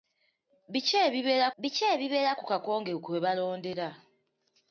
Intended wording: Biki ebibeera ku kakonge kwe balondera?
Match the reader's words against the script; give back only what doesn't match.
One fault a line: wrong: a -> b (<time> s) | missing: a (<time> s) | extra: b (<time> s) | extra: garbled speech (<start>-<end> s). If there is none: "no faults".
extra: biki ebibeera (1.6 s)